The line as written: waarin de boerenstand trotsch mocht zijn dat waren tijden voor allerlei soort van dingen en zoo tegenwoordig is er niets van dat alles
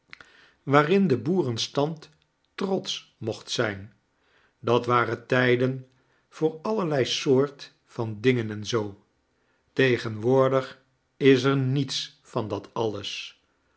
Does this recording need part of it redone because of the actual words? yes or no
no